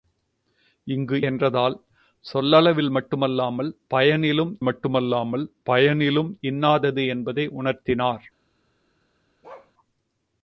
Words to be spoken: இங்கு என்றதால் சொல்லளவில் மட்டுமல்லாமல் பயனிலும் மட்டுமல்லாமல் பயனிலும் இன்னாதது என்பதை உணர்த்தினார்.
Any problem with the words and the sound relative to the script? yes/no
yes